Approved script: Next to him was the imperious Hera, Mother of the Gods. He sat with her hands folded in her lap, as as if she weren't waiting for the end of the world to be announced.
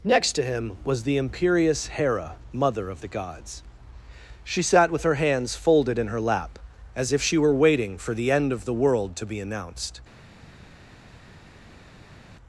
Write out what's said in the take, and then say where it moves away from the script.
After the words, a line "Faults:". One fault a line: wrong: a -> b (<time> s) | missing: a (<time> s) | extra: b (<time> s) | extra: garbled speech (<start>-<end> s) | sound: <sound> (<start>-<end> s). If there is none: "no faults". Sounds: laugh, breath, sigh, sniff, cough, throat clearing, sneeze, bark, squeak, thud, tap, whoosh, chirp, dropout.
Next to him was the imperious Hera, Mother of the Gods. She sat with her hands folded in her lap, as if she were waiting for the end of the world to be announced.
Faults:
wrong: He -> She (4.4 s)
missing: as (7.1 s)
wrong: weren't -> were (7.4 s)